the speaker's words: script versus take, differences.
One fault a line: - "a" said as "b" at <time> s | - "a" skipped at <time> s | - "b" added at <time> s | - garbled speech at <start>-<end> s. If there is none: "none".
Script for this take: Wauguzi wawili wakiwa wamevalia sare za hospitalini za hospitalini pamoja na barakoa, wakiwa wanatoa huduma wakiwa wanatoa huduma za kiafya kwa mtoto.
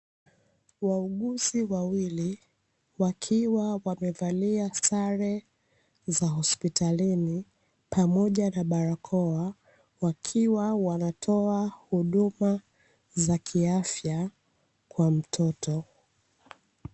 - "za hospitalini" skipped at 7.5 s
- "wakiwa wanatoa huduma" skipped at 12.6 s